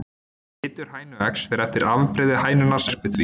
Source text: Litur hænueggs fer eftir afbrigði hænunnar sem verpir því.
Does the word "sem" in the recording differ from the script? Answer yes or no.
yes